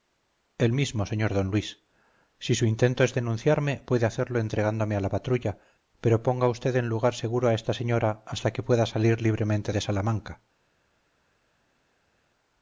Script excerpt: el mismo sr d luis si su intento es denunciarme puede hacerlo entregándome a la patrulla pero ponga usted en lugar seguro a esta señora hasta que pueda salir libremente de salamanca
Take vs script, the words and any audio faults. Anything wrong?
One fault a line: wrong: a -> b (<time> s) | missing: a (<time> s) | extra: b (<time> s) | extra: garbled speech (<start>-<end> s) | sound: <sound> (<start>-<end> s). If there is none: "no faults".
no faults